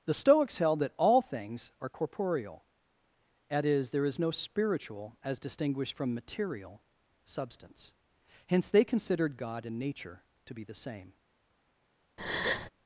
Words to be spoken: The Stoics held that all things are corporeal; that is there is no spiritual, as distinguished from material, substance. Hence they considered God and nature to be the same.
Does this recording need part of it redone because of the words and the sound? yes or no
yes